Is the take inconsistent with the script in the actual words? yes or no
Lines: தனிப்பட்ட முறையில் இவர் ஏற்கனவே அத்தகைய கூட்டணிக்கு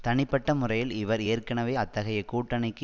no